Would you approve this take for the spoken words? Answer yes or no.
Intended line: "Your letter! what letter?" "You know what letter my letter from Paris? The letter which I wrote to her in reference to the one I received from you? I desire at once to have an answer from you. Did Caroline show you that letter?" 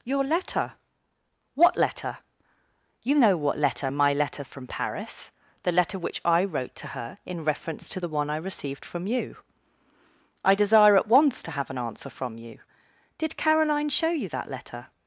yes